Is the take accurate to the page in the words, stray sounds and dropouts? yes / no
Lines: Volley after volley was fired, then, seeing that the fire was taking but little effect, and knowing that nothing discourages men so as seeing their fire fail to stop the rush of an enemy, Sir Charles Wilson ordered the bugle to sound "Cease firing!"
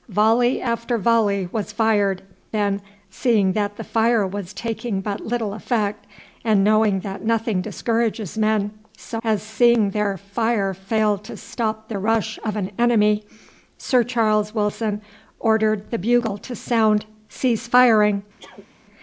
no